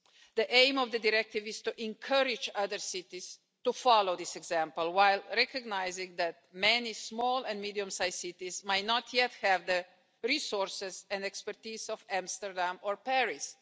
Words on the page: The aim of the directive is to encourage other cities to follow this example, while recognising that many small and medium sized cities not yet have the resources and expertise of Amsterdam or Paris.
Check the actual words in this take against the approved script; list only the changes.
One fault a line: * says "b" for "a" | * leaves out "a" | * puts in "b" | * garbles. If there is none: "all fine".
* puts in "might"